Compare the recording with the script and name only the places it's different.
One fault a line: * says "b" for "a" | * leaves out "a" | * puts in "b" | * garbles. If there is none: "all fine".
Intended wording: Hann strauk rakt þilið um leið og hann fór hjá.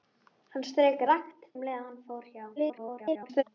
* leaves out "þilið"
* garbles